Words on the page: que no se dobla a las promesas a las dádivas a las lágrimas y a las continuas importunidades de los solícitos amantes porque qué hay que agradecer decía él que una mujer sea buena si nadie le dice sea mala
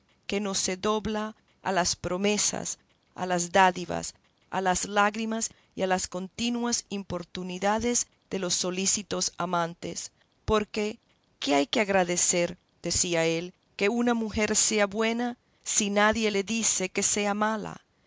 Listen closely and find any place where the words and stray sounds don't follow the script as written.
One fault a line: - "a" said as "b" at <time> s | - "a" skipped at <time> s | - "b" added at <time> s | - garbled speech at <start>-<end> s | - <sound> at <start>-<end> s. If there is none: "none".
- "que" added at 16.9 s